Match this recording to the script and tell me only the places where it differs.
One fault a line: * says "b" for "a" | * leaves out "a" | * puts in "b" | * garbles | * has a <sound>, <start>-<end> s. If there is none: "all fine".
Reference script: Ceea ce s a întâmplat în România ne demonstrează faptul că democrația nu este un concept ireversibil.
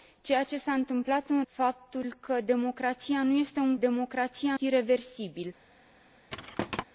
* leaves out "România ne demonstrează"
* says "democrația" for "concept"
* has a thud, 6.3-6.8 s